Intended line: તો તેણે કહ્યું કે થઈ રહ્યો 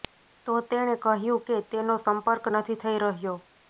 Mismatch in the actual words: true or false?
true